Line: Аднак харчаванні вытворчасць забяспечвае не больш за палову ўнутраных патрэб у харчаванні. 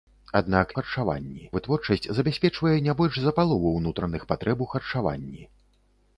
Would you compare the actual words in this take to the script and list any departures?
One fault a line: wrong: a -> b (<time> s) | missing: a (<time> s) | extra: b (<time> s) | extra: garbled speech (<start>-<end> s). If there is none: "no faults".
no faults